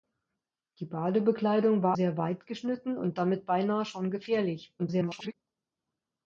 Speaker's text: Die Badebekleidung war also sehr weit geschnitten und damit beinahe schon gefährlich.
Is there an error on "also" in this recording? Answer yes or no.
yes